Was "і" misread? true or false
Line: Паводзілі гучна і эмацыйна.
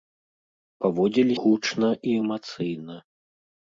false